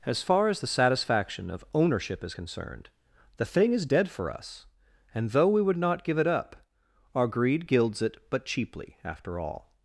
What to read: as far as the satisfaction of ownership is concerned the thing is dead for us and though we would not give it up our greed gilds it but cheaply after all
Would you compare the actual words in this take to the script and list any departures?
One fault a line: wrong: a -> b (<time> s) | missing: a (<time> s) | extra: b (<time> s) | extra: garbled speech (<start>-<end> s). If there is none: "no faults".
no faults